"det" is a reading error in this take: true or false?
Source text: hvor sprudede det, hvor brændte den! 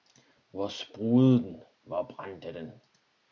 true